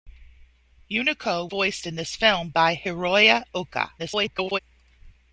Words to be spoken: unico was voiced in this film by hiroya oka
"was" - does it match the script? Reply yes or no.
no